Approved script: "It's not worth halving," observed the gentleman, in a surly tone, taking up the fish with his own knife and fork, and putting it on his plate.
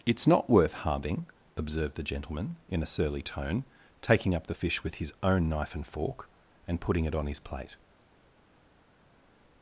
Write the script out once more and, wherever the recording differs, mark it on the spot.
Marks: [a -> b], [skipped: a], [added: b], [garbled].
"It's not worth halving," observed the gentleman, in a surly tone, taking up the fish with his own knife and fork, and putting it on his plate.